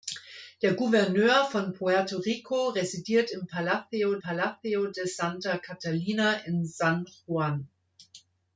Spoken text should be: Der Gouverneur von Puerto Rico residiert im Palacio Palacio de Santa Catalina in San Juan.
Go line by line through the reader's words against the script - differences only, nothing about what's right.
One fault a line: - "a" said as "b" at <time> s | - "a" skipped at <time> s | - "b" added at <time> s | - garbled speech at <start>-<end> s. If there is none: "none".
none